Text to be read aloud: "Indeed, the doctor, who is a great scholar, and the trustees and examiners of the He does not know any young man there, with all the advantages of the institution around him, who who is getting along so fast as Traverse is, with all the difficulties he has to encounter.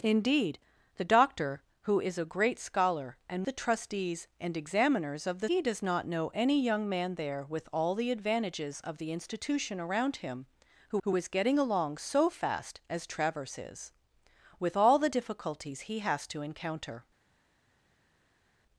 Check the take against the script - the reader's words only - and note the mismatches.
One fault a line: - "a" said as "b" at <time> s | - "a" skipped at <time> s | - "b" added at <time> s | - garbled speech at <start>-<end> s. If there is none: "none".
none